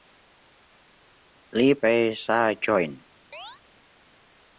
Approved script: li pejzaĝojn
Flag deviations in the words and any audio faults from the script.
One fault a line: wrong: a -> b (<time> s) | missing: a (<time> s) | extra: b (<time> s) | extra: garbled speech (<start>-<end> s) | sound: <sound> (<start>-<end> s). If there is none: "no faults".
sound: chirp (3.3-3.6 s)